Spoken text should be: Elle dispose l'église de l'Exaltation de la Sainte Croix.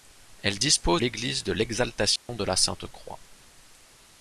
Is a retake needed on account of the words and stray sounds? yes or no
yes